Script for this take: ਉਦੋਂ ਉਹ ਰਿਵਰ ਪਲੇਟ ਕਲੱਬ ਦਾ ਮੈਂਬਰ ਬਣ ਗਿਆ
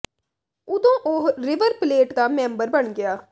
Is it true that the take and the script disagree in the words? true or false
true